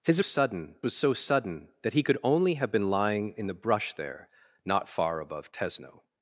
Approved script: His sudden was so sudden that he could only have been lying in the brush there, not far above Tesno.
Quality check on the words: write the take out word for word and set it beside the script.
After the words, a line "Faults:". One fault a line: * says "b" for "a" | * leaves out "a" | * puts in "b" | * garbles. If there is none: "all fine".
His sudden was so sudden that he could only have been lying in the brush there, not far above Tesno.
Faults:
all fine